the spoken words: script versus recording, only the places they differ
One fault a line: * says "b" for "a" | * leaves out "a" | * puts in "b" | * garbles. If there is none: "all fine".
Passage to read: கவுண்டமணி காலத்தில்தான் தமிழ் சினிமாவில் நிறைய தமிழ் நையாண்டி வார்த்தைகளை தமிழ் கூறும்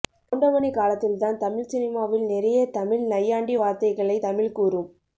all fine